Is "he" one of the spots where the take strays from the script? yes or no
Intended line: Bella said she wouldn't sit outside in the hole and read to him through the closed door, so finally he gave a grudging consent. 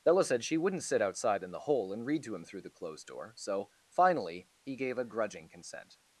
no